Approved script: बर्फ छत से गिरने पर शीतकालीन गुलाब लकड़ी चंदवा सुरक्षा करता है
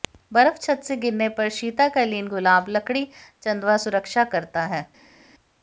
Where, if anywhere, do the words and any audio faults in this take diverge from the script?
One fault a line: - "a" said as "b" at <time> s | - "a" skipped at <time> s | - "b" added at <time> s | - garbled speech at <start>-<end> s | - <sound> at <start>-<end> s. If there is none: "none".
none